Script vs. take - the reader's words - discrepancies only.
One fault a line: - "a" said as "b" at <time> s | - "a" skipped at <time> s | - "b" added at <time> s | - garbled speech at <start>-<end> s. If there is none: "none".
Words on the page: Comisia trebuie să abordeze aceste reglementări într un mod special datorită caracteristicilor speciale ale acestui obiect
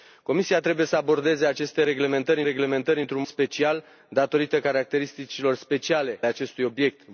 - "reglementări" added at 2.4 s
- "mod" skipped at 3.2 s
- "ale" skipped at 6.2 s